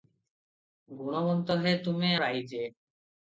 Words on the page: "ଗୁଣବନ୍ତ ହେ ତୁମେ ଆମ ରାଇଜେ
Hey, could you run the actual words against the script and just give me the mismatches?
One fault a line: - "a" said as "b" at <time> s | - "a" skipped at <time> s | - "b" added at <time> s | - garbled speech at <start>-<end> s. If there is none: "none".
- "ଆମ" skipped at 2.1 s